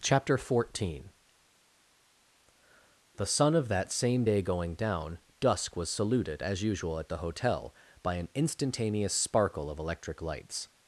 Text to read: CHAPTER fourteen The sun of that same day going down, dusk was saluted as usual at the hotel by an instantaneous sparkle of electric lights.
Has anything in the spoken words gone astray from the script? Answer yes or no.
no